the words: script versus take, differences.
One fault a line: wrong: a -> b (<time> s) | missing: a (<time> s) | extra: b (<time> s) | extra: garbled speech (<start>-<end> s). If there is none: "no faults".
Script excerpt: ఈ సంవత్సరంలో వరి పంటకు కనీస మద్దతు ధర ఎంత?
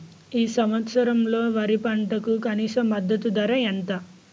no faults